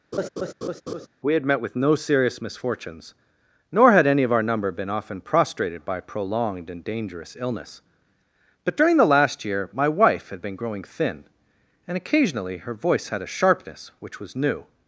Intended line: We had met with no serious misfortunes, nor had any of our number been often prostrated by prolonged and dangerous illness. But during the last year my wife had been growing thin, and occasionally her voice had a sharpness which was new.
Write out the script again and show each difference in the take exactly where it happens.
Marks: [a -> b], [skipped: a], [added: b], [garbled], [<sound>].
[laugh] We had met with no serious misfortunes, nor had any of our number been often prostrated by prolonged and dangerous illness. But during the last year my wife had been growing thin, and occasionally her voice had a sharpness which was new.